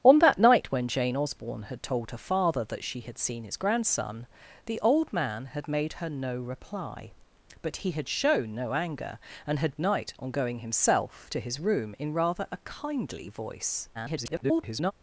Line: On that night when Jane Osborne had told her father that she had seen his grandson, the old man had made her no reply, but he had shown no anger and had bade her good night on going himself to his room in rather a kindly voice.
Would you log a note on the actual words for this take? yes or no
yes